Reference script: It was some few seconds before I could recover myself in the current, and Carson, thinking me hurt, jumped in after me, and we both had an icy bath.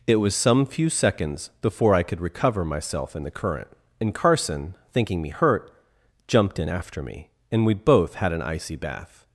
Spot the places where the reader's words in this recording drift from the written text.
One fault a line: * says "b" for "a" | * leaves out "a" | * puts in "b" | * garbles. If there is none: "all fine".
all fine